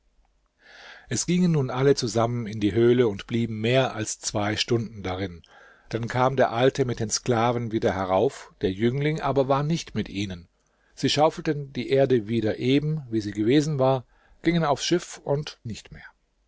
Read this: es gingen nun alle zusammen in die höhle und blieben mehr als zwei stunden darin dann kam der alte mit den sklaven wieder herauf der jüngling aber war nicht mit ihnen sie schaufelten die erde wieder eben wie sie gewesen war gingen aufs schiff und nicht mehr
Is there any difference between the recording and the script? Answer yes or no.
no